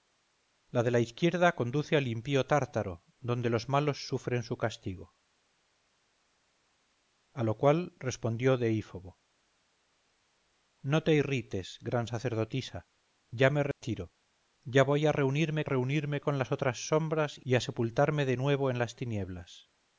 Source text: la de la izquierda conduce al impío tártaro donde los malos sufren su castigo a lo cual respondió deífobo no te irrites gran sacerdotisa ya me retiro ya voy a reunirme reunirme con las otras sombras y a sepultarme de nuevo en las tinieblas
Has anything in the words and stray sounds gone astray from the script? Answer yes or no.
yes